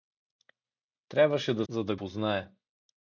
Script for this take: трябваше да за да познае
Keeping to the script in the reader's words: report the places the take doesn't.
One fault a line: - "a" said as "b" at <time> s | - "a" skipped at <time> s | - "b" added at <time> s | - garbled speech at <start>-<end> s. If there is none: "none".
none